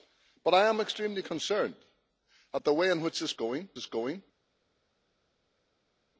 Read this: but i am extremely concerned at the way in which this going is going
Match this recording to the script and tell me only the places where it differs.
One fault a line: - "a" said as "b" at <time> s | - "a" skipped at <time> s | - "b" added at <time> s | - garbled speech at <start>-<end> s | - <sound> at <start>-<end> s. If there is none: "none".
none